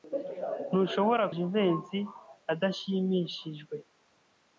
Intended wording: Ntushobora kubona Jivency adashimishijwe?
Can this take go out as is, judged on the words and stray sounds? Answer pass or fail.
fail